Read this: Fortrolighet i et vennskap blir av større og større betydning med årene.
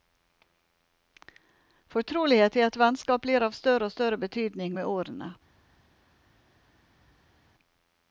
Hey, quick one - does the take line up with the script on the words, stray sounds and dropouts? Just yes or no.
yes